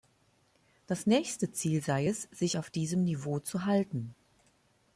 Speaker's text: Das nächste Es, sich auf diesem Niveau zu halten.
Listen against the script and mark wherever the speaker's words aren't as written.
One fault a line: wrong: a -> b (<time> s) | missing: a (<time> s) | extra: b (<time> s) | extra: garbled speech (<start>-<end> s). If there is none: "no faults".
extra: Ziel sei (1.5 s)